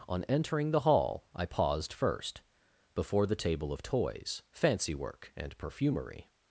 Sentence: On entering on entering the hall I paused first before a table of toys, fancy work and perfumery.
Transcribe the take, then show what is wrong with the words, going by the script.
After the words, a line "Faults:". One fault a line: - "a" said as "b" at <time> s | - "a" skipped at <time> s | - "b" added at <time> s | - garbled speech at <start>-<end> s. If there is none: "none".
On entering the hall I paused first before the table of toys, fancy work and perfumery.
Faults:
- "on entering" skipped at 0.7 s
- "a" said as "the" at 3.2 s